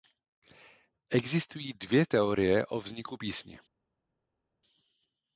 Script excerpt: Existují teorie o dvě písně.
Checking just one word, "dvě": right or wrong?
wrong